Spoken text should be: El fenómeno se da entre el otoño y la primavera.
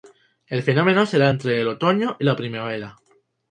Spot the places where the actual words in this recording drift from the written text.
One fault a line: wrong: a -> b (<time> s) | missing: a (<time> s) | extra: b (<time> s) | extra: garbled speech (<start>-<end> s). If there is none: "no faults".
no faults